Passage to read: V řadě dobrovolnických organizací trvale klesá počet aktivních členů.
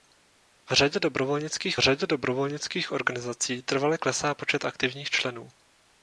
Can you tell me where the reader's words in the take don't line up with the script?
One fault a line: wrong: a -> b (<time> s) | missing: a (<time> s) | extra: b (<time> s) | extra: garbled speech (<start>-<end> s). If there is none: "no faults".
extra: řadě dobrovolnických (1.8 s)